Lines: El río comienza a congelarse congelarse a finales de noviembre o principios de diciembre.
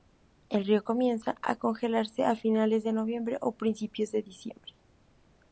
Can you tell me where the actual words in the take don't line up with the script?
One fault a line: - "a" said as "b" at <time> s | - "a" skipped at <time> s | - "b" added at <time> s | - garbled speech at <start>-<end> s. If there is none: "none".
- "congelarse" skipped at 2.2 s